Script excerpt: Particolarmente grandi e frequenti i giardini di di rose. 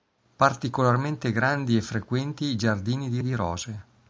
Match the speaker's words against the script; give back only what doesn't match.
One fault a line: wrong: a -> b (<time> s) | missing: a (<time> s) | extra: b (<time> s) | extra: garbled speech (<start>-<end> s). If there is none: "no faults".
no faults